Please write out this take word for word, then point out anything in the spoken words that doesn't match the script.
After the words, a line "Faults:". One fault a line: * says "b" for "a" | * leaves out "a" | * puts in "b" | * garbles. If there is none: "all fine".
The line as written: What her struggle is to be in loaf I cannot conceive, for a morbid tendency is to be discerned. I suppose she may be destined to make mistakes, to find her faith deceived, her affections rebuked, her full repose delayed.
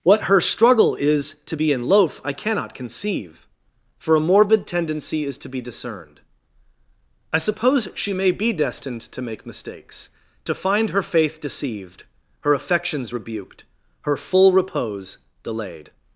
What her struggle is to be in loaf I cannot conceive, for a morbid tendency is to be discerned. I suppose she may be destined to make mistakes, to find her faith deceived, her affections rebuked, her full repose delayed.
Faults:
all fine